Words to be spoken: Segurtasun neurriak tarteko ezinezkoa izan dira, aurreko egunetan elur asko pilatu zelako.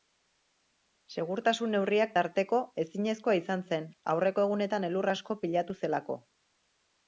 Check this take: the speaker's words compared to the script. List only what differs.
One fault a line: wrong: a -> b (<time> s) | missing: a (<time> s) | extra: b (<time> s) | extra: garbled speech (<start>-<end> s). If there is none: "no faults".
wrong: dira -> zen (3.7 s)